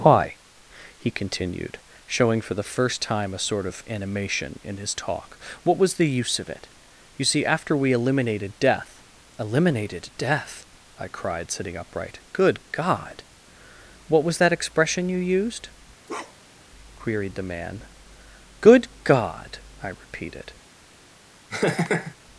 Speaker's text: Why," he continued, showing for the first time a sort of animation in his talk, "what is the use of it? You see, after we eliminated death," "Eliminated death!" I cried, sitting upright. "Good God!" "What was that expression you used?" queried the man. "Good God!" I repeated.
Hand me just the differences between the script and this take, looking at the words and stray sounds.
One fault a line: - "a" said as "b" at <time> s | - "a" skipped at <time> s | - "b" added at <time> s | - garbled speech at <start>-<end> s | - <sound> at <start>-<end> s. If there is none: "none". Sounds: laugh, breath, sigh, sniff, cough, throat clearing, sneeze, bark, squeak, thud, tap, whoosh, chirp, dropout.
- "is" said as "was" at 5.8 s
- bark at 16.1-16.7 s
- laugh at 21.5-22.1 s